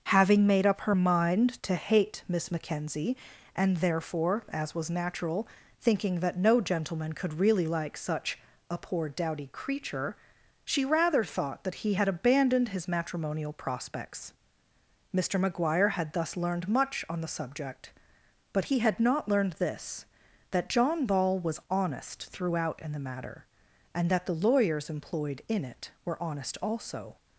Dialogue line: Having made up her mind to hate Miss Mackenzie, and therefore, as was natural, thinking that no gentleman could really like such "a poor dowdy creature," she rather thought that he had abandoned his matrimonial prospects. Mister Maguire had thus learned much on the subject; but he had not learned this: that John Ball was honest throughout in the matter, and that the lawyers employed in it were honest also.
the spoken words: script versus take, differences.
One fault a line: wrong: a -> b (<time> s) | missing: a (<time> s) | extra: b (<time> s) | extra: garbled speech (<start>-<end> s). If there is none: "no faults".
no faults